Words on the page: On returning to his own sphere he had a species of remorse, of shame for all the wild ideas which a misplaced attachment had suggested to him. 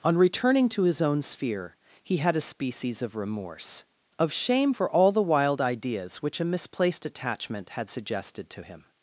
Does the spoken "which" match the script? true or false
true